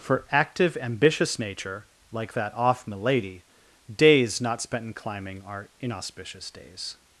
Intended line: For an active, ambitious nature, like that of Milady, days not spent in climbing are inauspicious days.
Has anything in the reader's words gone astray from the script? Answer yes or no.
yes